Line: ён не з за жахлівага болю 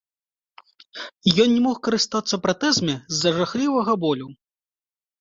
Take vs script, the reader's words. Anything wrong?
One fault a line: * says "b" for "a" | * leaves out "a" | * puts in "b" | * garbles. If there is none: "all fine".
* puts in "мог карыстацца пратэзамі"